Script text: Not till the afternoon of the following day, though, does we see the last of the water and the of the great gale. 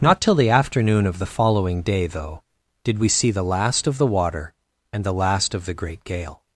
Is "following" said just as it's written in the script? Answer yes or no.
yes